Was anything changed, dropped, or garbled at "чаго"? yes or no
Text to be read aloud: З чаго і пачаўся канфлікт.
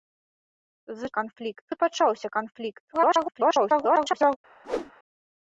yes